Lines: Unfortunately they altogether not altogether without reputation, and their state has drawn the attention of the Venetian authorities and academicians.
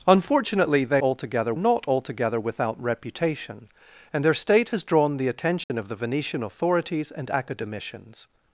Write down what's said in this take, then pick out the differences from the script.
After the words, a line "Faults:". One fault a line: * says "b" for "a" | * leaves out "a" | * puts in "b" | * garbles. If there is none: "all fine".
Unfortunately they altogether not altogether without reputation, and their state has drawn the attention of the Venetian authorities and academicians.
Faults:
all fine